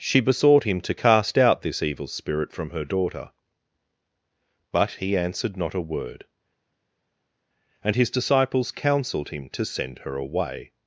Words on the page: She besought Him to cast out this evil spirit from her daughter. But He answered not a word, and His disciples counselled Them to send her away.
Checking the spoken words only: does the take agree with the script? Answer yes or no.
no